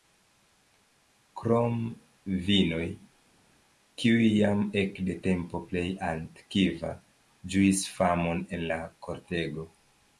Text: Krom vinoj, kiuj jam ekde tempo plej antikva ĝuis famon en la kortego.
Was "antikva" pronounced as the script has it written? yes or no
yes